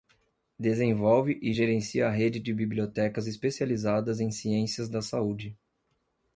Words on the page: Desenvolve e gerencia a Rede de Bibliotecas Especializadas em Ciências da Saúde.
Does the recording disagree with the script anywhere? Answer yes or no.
no